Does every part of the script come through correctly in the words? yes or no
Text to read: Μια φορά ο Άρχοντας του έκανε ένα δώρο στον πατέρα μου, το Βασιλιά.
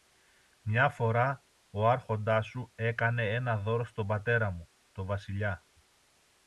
no